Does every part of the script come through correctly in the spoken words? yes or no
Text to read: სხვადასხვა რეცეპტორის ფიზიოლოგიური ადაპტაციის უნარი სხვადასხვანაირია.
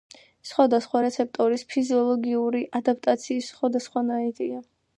no